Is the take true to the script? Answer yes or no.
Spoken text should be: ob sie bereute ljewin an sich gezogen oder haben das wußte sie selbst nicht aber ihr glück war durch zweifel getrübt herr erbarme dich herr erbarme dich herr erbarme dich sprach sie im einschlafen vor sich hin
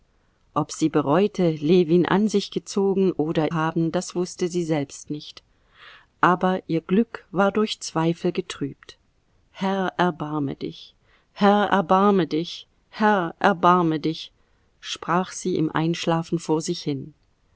yes